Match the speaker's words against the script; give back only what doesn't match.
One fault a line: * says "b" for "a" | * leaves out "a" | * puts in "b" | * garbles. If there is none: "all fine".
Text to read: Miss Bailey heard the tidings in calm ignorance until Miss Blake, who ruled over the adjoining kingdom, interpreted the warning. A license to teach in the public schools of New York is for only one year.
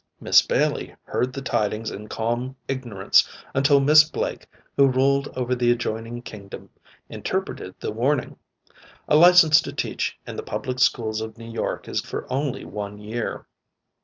all fine